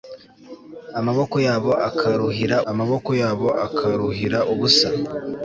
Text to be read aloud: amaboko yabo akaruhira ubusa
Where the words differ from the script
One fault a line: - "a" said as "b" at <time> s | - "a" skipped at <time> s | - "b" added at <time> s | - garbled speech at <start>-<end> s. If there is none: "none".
- "amaboko yabo akaruhira" added at 2.7 s